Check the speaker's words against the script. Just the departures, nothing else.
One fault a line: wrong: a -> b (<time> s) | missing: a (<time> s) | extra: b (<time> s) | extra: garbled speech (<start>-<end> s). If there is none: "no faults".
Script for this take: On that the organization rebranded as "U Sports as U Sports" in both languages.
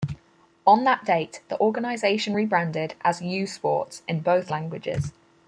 extra: date (1.1 s)
missing: as U Sports (4.0 s)